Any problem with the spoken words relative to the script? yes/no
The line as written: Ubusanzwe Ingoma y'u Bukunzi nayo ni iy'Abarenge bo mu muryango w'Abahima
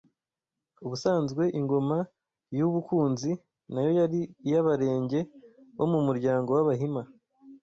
yes